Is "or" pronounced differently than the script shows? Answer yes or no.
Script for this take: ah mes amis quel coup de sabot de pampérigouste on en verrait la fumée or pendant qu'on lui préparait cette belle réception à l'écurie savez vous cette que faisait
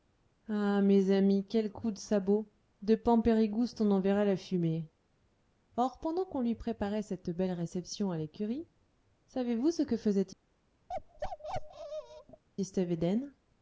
no